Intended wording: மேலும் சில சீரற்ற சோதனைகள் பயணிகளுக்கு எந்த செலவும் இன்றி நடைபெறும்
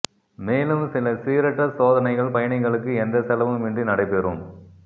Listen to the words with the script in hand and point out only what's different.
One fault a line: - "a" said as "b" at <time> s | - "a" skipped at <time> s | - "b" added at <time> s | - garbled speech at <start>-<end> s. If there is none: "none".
none